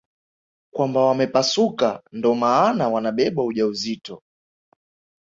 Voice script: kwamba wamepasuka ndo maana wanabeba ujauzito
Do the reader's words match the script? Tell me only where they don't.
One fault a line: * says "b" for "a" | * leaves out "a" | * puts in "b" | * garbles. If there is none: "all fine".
all fine